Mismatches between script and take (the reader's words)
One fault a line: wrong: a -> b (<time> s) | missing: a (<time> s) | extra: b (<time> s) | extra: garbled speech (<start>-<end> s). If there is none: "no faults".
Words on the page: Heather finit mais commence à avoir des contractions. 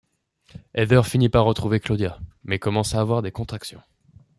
extra: par retrouver Claudia (1.3 s)